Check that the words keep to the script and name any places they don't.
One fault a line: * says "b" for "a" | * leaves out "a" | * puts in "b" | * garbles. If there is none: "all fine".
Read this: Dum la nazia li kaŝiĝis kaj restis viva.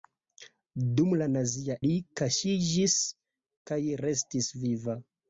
all fine